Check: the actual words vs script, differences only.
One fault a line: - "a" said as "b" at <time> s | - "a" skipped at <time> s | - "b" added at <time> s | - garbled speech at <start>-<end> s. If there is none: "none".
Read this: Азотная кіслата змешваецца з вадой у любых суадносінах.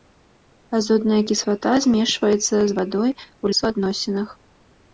- "любых" skipped at 3.5 s